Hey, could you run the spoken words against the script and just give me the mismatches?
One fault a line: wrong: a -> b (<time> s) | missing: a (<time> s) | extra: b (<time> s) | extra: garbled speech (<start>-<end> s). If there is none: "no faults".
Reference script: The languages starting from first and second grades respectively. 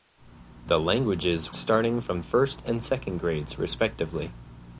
no faults